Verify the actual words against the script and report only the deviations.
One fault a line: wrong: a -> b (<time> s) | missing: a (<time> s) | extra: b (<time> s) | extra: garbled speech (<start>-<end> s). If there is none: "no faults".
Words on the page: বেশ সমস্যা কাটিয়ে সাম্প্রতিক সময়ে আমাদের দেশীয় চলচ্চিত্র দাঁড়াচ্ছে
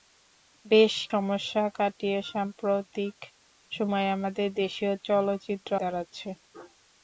no faults